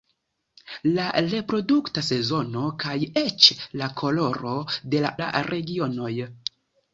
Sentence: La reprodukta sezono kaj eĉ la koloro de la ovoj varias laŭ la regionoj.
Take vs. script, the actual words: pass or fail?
fail